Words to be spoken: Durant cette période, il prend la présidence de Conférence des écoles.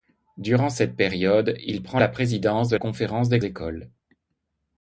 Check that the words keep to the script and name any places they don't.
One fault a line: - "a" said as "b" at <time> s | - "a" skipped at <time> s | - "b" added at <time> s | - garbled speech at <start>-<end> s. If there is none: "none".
none